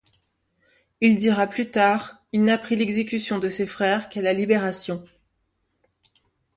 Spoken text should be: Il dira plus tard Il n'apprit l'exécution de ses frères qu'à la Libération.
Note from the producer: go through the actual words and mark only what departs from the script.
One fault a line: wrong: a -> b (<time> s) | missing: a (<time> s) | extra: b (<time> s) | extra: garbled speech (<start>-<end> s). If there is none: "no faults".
no faults